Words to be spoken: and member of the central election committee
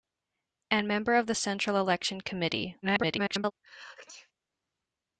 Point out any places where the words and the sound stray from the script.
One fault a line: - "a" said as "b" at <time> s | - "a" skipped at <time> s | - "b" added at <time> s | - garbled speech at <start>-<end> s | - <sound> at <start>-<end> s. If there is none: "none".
- garbled speech at 2.8-3.5 s
- sneeze at 3.6-4.3 s